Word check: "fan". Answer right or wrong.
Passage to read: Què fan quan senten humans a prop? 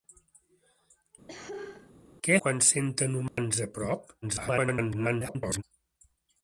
wrong